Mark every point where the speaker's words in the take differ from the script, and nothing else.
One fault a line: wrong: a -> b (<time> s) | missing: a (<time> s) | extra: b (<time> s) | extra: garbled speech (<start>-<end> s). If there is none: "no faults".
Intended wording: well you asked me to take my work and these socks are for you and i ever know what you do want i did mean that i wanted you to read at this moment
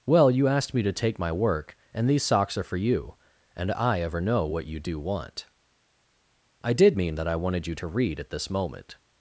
no faults